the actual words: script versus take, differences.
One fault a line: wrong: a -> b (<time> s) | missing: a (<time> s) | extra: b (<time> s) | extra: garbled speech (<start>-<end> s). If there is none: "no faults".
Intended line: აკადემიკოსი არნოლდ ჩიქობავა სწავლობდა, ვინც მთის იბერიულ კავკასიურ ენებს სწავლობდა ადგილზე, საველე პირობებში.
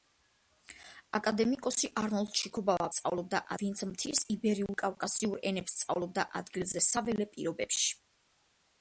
no faults